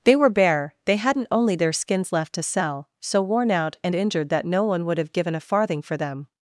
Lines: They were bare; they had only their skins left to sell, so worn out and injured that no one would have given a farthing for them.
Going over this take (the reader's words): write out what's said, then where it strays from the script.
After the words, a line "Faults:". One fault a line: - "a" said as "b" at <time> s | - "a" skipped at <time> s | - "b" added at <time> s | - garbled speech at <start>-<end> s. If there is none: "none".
They were bare; they hadn't only their skins left to sell, so worn out and injured that no one would have given a farthing for them.
Faults:
- "had" said as "hadn't" at 0.9 s